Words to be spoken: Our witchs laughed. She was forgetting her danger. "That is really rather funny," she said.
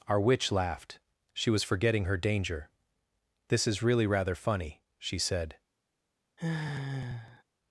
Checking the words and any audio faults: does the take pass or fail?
fail